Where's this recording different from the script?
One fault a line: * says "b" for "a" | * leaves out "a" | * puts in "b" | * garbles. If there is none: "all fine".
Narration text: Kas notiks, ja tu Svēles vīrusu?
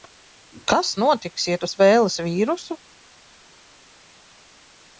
all fine